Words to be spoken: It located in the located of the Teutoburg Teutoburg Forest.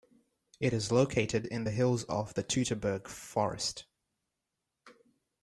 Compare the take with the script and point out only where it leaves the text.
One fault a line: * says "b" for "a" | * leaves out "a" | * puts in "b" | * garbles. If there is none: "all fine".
* puts in "is"
* says "hills" for "located"
* leaves out "Teutoburg"